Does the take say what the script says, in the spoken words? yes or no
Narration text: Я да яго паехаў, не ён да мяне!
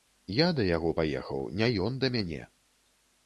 yes